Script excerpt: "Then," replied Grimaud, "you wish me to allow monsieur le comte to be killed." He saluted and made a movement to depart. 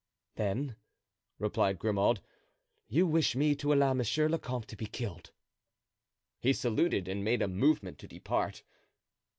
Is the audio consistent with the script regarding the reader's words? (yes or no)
yes